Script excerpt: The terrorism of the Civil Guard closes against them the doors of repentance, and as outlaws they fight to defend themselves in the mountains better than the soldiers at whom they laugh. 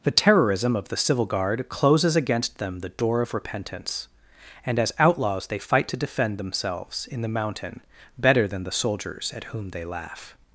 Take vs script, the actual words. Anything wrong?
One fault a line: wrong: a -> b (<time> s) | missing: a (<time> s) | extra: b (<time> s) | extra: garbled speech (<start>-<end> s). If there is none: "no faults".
wrong: doors -> door (2.9 s)
wrong: mountains -> mountain (7.3 s)